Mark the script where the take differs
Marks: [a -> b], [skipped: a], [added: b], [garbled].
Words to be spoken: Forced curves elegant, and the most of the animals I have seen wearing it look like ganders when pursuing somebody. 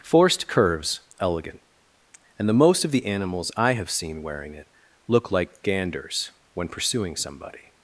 Forced curves elegant, and the most of the animals I have seen wearing it look like ganders when pursuing somebody.